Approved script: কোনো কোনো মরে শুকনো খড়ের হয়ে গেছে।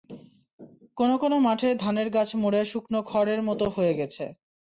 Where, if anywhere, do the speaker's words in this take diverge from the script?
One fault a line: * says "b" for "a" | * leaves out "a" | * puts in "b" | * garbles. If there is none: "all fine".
* puts in "মাঠে ধানের গাছ"
* puts in "মতো"